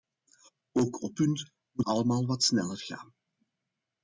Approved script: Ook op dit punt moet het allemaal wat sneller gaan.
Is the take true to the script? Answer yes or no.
no